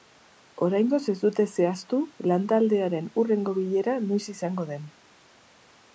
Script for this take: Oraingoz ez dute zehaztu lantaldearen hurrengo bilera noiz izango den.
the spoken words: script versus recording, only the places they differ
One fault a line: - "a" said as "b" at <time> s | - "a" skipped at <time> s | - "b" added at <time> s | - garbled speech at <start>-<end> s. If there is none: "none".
none